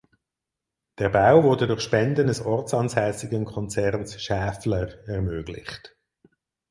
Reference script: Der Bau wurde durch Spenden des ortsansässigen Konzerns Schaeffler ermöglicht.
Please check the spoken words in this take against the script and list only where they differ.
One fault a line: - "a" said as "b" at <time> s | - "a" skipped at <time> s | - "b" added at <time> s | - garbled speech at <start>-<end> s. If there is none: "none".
none